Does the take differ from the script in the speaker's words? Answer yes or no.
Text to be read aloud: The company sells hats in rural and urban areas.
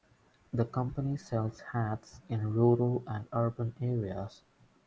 no